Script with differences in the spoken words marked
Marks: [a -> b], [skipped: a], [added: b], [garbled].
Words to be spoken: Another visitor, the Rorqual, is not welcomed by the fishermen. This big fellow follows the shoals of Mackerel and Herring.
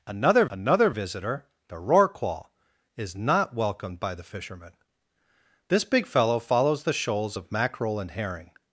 Another [added: another] visitor, the Rorqual, is not welcomed by the fishermen. This big fellow follows the shoals of Mackerel and Herring.